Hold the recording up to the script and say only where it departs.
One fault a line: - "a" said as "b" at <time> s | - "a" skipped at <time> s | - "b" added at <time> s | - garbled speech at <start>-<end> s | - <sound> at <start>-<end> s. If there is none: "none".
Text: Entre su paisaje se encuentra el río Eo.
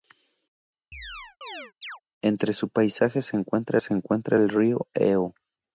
- chirp at 0.9-2.0 s
- "se encuentra" added at 3.8 s